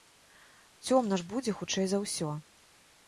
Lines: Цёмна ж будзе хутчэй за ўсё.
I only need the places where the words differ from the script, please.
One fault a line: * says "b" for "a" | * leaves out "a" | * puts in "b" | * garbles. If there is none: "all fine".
all fine